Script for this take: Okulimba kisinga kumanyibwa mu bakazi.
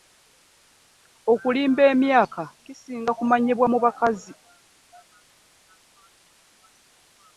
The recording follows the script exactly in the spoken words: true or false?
false